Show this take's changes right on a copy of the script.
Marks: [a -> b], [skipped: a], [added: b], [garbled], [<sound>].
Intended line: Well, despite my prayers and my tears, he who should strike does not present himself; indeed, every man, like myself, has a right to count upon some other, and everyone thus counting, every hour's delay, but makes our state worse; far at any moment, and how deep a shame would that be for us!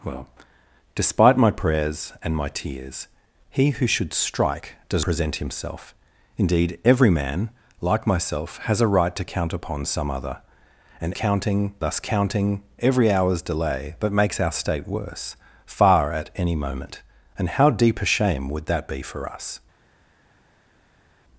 Well, despite my prayers and my tears, he who should strike does [skipped: not] present himself; indeed, every man, like myself, has a right to count upon some other, and [everyone -> counting] thus counting, every hour's delay, but makes our state worse; far at any moment, and how deep a shame would that be for us!